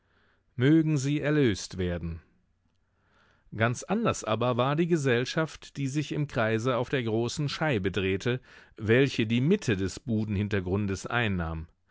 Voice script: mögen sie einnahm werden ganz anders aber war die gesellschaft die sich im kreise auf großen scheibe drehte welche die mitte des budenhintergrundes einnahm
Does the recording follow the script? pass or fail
fail